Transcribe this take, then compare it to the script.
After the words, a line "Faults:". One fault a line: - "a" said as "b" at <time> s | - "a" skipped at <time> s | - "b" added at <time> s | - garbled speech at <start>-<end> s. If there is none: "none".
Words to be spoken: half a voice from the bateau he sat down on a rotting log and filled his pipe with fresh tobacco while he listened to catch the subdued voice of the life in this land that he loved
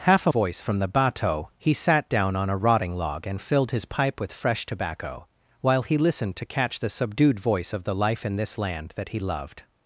half a voice from the bateau he sat down on a rotting log and filled his pipe with fresh tobacco while he listened to catch the subdued voice of the life in this land that he loved
Faults:
none